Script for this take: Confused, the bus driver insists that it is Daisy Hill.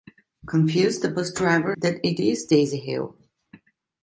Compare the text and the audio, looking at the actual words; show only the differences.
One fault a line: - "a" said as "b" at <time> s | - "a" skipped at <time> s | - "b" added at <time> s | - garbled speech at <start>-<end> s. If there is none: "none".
- "insists" skipped at 1.8 s